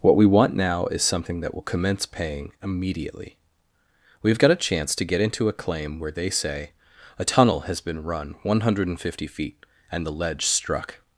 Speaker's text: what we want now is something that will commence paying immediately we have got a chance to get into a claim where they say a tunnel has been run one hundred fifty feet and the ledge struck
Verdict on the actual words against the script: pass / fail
pass